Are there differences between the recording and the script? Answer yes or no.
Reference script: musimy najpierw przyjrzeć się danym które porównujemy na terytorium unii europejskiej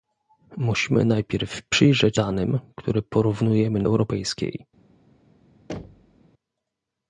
yes